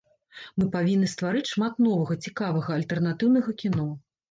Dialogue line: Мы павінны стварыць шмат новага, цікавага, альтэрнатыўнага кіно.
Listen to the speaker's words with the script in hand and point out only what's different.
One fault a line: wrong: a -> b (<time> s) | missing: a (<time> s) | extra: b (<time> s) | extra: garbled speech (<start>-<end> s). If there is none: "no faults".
no faults